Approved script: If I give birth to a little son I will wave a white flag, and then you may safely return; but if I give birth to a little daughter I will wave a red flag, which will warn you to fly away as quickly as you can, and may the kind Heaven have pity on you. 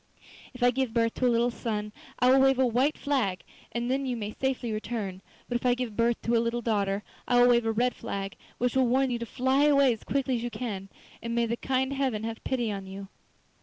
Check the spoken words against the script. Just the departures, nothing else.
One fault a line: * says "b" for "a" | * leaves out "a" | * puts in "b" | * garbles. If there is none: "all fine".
all fine